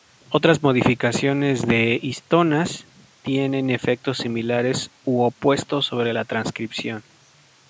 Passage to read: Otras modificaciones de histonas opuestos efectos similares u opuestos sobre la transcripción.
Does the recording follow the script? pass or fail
fail